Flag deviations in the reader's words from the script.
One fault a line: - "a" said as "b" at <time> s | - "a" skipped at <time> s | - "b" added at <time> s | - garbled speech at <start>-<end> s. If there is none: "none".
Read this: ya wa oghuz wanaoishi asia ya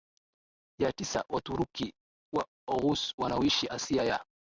- "tisa waturuki" added at 0.9 s